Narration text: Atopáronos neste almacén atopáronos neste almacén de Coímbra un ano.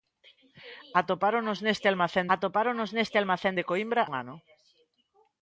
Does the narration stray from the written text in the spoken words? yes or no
no